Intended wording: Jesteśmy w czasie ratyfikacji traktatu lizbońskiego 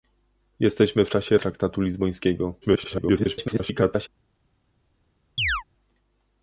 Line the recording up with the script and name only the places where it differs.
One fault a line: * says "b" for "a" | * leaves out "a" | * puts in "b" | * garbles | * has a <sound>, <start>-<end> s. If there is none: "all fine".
* leaves out "ratyfikacji"
* garbles
* has a chirp, 5.4-5.6 s